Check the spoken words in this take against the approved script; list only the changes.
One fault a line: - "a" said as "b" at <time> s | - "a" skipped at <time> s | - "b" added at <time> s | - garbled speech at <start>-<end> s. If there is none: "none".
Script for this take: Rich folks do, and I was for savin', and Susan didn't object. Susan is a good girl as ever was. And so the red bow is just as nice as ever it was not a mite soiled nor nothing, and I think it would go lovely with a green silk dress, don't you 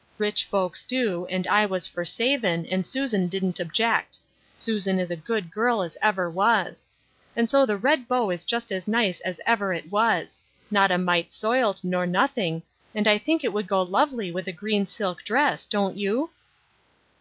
none